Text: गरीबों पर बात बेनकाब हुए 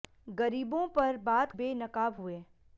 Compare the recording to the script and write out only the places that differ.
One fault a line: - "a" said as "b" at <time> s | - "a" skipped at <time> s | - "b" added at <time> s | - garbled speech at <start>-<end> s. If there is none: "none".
none